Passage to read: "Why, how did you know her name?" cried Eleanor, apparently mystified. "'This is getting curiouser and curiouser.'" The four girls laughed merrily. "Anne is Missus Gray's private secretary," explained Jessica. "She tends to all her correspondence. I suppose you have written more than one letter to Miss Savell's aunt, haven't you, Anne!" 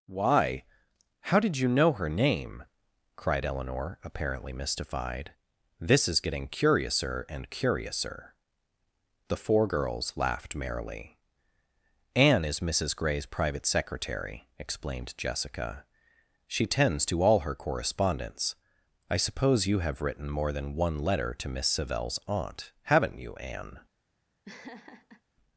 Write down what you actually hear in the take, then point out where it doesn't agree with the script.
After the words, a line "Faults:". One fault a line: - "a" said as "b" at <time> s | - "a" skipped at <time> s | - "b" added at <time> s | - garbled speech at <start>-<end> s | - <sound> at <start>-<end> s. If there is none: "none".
"Why, how did you know her name?" cried Eleanor, apparently mystified. "'This is getting curiouser and curiouser.'" The four girls laughed merrily. "Anne is Missus Gray's private secretary," explained Jessica. "She tends to all her correspondence. I suppose you have written more than one letter to Miss Savell's aunt, haven't you, Anne!"
Faults:
- laugh at 24.4-25.2 s